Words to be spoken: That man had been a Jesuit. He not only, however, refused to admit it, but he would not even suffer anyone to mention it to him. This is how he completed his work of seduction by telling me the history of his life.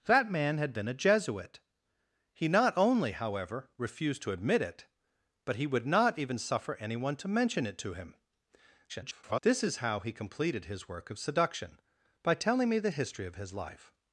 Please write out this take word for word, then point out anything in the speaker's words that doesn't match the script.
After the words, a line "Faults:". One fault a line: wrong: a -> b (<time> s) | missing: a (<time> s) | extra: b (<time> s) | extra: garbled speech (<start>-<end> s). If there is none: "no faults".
That man had been a Jesuit. He not only, however, refused to admit it, but he would not even suffer anyone to mention it to him. [garbled] This is how he completed his work of seduction by telling me the history of his life.
Faults:
extra: garbled speech (8.9-9.4 s)